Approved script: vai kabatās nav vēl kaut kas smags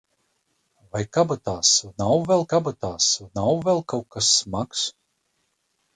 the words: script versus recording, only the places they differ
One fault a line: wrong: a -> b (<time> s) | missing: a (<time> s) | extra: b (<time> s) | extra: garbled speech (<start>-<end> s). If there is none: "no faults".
extra: kabatās nav vēl (2.5 s)